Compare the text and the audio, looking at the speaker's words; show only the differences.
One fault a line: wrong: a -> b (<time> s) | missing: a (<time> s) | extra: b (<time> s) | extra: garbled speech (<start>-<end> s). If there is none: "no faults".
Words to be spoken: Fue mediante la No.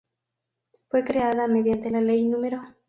extra: creada (1.0 s)
extra: Ley (2.0 s)